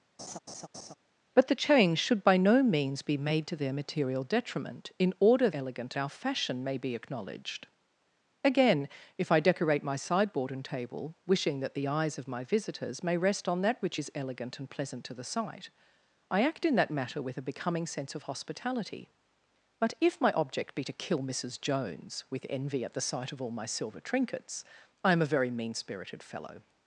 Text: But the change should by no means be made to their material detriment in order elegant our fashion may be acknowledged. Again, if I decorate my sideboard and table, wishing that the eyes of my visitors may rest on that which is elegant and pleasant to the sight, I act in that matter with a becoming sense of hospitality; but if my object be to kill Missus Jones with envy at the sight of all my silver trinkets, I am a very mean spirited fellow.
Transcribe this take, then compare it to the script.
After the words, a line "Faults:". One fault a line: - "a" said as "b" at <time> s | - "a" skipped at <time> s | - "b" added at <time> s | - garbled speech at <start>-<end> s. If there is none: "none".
But the change should by no means be made to their material detriment in order elegant our fashion may be acknowledged. Again, if I decorate my sideboard and table, wishing that the eyes of my visitors may rest on that which is elegant and pleasant to the sight, I act in that matter with a becoming sense of hospitality; but if my object be to kill Missus Jones with envy at the sight of all my silver trinkets, I am a very mean spirited fellow.
Faults:
none